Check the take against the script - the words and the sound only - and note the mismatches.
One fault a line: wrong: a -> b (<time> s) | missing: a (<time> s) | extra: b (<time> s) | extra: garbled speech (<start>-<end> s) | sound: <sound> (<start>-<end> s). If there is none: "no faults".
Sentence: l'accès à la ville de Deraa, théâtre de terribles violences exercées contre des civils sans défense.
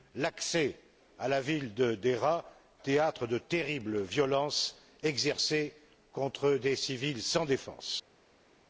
no faults